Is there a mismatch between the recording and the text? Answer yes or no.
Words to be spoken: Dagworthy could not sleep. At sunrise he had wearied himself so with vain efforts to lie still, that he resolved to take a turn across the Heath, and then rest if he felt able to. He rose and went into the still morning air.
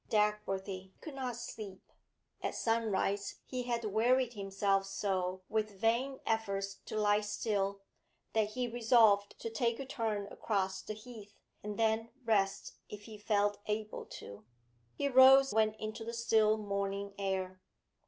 yes